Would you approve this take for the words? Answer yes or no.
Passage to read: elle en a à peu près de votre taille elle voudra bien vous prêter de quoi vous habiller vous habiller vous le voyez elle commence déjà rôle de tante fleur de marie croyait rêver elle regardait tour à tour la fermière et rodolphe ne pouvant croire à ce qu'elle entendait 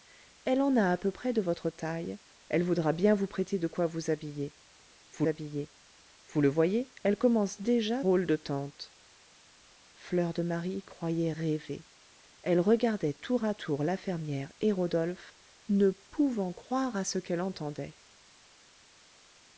yes